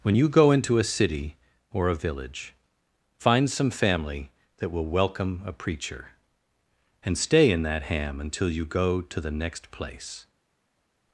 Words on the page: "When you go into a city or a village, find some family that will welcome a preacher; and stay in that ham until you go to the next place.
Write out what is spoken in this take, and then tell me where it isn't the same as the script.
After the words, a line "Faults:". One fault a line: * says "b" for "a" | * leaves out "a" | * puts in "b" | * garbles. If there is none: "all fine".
"When you go into a city or a village, find some family that will welcome a preacher; and stay in that ham until you go to the next place.
Faults:
all fine